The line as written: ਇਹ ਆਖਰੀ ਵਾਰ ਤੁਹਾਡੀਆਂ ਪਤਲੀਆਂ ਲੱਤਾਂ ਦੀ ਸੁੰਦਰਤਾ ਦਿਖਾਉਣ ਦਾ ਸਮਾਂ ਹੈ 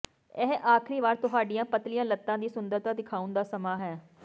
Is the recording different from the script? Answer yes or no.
no